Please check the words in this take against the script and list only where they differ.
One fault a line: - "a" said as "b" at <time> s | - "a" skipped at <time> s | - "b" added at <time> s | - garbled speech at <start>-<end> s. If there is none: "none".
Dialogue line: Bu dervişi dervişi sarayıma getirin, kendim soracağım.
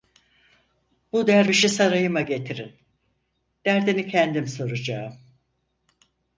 - "dervişi" skipped at 1.7 s
- "derdini" added at 3.6 s